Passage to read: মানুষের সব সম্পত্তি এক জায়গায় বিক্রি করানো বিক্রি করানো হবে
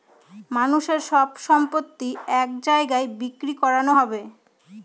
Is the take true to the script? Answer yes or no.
no